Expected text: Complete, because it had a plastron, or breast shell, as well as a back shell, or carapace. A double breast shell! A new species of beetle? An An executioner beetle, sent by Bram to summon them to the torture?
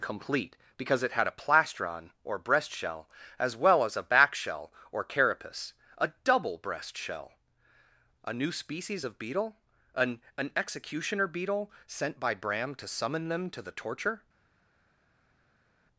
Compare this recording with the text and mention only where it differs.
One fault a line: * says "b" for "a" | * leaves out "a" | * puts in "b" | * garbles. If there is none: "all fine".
all fine